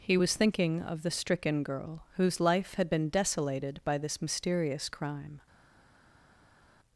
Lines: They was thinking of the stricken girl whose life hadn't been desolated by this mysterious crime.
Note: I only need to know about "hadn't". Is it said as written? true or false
false